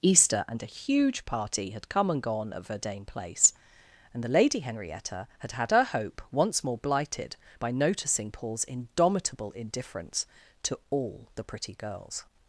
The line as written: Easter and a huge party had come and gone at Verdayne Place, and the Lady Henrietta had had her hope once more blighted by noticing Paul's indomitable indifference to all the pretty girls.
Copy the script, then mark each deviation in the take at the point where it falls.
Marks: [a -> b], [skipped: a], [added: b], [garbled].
Easter and a huge party had come and gone at Verdayne Place, and the Lady Henrietta had had her hope once more blighted by noticing Paul's indomitable indifference to all the pretty girls.